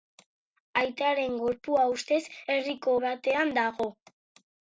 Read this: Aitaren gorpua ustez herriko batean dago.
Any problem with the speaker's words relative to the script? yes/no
no